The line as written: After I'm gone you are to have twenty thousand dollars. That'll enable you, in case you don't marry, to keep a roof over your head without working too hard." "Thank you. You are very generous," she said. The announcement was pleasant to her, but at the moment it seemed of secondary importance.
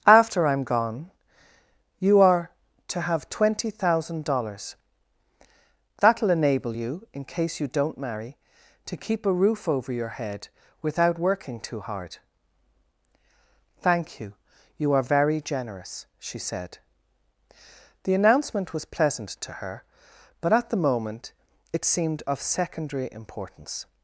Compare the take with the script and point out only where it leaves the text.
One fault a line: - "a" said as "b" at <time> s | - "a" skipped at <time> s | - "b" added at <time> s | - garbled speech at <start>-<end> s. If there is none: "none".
none